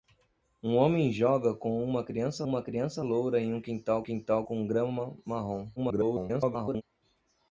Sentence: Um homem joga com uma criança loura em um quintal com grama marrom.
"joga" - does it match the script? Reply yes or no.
yes